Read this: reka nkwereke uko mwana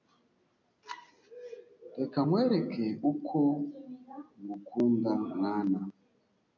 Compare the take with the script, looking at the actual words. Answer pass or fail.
fail